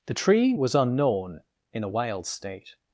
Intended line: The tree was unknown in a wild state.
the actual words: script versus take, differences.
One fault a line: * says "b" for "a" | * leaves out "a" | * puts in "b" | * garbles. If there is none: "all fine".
all fine